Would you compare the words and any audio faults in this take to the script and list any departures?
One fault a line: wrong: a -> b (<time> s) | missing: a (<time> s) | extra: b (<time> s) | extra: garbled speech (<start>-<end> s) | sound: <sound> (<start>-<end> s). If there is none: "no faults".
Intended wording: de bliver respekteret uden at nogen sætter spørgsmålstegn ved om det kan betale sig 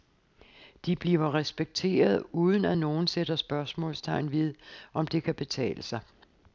no faults